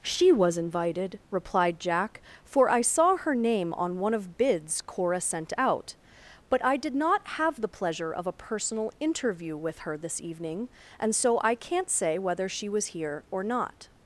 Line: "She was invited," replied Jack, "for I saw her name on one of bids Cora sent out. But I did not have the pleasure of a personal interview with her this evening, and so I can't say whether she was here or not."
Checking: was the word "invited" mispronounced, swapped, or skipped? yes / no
no